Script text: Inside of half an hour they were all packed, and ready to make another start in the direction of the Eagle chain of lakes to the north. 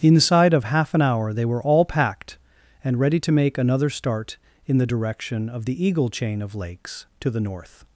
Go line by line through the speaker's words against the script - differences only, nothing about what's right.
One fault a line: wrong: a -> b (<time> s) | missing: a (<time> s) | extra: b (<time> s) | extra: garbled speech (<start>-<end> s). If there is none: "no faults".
no faults